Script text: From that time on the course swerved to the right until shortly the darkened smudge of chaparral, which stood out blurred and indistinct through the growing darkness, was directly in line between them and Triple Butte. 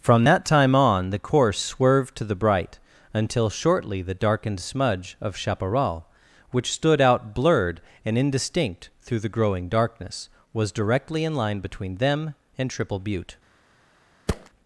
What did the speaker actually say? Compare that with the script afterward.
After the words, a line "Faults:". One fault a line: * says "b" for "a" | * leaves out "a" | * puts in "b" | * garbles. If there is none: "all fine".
From that time on the course swerved to the bright until shortly the darkened smudge of chaparral, which stood out blurred and indistinct through the growing darkness, was directly in line between them and Triple Butte.
Faults:
* says "bright" for "right"